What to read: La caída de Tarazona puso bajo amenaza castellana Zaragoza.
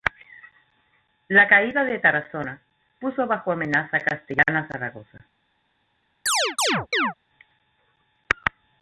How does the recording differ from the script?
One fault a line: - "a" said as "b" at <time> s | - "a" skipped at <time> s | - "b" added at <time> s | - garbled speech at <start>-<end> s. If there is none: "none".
none